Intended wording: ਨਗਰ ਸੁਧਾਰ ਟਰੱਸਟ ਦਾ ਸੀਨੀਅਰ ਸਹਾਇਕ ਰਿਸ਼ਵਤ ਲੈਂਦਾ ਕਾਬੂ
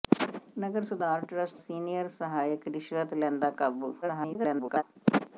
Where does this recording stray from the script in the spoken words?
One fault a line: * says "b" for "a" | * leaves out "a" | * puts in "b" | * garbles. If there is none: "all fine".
* leaves out "ਦਾ"
* garbles